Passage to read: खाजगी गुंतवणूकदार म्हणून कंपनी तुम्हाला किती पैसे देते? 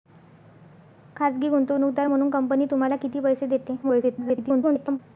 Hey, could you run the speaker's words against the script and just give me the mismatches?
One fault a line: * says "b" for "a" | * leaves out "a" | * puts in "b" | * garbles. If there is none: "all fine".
* garbles